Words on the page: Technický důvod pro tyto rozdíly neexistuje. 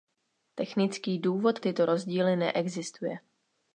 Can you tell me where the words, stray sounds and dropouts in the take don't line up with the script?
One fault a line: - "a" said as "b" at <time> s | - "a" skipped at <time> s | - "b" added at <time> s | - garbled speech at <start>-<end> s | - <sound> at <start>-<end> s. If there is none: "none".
- "pro" skipped at 1.6 s